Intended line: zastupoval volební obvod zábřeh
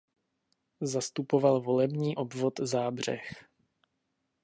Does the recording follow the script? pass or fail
pass